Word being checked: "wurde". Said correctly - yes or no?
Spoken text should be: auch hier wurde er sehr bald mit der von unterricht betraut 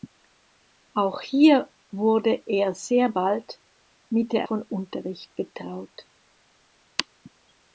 yes